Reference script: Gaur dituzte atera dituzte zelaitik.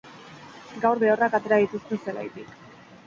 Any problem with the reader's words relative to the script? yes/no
yes